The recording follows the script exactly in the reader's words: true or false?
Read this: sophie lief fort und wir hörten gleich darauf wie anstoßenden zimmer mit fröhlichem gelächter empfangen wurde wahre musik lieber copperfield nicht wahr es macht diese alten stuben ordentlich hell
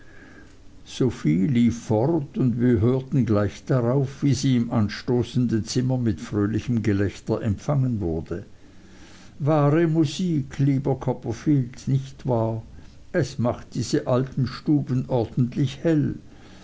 false